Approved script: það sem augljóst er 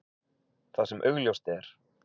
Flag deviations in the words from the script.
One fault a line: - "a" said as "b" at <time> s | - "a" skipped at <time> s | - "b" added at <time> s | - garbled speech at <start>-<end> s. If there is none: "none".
none